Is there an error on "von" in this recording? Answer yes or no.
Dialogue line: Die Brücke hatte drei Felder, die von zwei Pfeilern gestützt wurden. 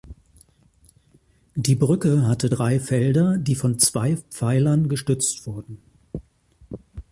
no